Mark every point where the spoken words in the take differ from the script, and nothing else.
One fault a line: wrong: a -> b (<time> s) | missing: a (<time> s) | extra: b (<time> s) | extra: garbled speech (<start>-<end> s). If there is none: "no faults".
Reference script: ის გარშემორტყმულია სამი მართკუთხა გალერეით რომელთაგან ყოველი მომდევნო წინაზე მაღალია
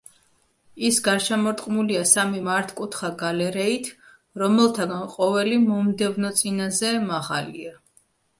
no faults